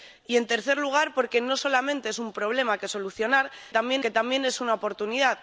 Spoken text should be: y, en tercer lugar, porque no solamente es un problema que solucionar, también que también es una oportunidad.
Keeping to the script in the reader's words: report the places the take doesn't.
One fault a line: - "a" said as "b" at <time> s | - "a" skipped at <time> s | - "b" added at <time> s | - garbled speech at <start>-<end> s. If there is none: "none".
none